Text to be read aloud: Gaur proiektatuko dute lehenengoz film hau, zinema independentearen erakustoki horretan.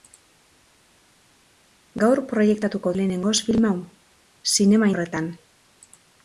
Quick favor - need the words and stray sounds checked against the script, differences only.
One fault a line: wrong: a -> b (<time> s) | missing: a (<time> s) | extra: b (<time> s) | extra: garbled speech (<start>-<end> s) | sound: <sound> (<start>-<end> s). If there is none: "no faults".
missing: dute (2.9 s)
missing: independentearen erakustoki (4.9 s)